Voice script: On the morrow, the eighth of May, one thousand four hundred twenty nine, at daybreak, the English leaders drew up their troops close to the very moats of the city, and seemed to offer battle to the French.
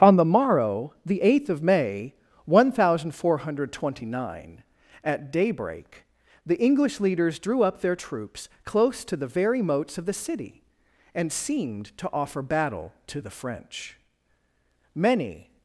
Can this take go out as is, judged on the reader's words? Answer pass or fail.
fail